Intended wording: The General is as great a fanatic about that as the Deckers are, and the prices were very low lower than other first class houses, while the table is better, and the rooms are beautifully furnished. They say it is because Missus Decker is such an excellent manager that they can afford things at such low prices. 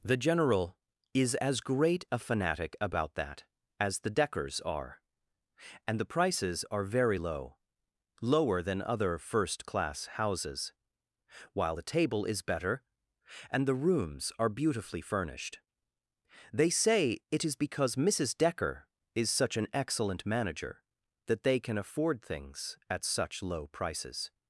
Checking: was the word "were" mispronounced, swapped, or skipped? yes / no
yes